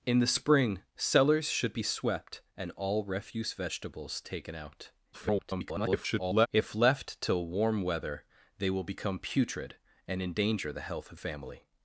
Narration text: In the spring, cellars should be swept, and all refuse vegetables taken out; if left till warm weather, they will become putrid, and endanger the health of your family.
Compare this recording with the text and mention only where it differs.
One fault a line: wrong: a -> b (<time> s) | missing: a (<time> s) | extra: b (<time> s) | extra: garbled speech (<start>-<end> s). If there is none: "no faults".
extra: garbled speech (5.1-6.5 s)
missing: your (11.2 s)